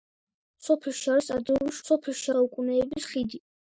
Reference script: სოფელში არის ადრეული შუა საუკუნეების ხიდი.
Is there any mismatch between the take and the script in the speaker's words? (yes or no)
yes